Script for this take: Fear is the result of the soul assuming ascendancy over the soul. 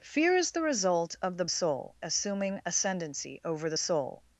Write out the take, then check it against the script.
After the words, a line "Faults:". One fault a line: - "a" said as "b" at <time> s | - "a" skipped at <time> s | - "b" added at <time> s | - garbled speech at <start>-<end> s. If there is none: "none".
Fear is the result of the soul assuming ascendancy over the soul.
Faults:
none